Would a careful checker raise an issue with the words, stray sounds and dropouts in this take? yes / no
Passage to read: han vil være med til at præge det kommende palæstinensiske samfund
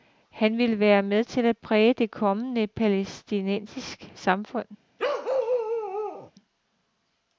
yes